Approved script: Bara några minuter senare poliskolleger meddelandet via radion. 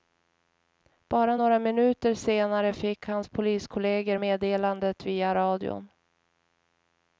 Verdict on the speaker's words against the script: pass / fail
fail